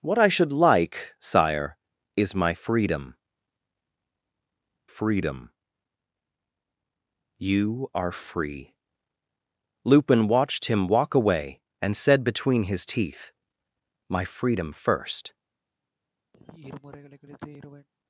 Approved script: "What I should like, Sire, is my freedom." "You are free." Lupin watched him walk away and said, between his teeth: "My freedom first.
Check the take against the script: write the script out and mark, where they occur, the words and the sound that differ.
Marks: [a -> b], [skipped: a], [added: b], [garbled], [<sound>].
"What I should like, Sire, is my freedom." [added: freedom] "You are free." Lupin watched him walk away and said, between his teeth: "My freedom first. [sigh]